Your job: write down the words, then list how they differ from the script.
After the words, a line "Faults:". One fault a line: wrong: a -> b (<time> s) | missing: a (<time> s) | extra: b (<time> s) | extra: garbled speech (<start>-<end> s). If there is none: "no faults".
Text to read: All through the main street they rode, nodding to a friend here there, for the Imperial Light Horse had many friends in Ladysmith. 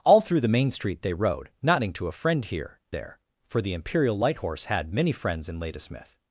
All through the main street they rode, nodding to a friend here there, for the Imperial Light Horse had many friends in Ladysmith.
Faults:
no faults